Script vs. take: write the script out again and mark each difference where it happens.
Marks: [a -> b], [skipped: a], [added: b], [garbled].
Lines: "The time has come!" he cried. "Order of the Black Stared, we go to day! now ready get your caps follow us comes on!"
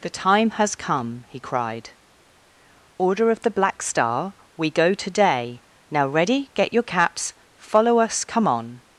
"The time has come!" he cried. "Order of the Black [Stared, -> Star] we go to day! now ready get your caps follow us [comes -> come] on!"